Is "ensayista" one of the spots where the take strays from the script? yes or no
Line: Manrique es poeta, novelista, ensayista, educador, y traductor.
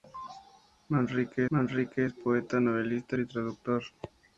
yes